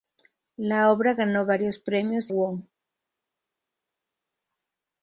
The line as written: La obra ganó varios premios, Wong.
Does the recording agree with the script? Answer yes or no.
yes